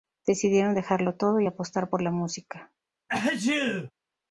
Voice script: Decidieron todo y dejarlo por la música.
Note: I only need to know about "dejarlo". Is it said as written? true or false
false